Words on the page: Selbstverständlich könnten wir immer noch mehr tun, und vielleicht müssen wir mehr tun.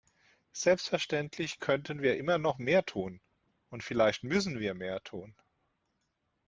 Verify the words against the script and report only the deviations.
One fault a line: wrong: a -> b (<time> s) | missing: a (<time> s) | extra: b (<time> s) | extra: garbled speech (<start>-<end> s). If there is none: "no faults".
no faults